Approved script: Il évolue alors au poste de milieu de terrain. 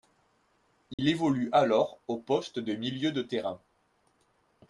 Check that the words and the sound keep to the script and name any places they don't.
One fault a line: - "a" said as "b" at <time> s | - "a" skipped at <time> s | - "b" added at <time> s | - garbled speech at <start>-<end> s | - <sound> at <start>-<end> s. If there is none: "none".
- dropout at 0.9-1.0 s